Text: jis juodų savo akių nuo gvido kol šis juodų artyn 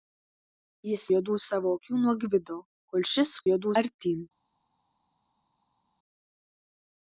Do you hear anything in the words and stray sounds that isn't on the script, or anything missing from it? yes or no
no